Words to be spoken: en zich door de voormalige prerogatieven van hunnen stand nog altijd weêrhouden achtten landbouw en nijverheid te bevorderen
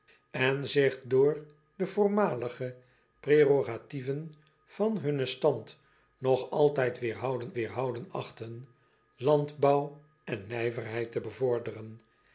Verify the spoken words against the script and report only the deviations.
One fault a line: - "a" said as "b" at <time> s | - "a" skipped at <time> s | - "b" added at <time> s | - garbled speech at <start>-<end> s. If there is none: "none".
- "weêrhouden" added at 7.5 s